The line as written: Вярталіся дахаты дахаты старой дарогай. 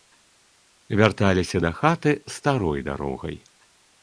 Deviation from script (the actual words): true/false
true